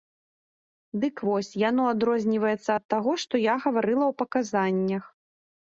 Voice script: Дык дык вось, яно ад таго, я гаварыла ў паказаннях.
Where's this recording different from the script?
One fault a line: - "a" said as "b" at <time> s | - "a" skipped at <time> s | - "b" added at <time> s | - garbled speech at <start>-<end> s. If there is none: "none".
- "дык" skipped at 1.1 s
- "адрозніваецца" added at 1.9 s
- "што" added at 3.2 s